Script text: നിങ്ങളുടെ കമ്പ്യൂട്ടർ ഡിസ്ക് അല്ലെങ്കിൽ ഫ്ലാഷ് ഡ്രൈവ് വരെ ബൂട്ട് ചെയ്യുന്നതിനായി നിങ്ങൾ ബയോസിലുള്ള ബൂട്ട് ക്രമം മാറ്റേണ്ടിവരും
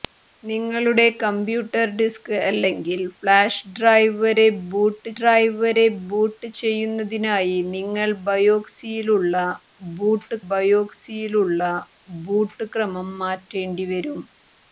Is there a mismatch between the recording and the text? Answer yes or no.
yes